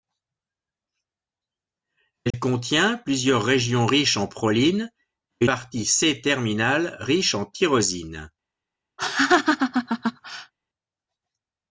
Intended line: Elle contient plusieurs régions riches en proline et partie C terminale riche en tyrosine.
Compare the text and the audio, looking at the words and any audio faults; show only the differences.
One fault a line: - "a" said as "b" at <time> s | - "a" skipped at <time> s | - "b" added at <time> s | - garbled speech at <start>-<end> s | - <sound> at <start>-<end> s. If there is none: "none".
- dropout at 2.3-2.3 s
- laugh at 9.0-10.5 s